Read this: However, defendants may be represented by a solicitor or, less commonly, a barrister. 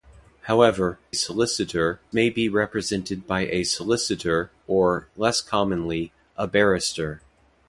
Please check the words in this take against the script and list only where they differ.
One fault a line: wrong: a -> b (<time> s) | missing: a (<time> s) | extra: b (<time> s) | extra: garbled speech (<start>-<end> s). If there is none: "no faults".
wrong: defendants -> solicitor (1.1 s)